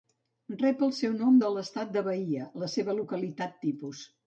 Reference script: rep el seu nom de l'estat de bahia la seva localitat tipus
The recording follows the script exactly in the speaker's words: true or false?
true